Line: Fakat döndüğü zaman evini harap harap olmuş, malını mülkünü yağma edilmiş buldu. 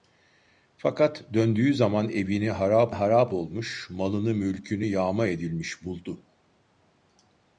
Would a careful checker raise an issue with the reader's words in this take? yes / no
no